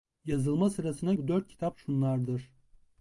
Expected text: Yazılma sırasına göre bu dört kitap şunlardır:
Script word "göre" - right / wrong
wrong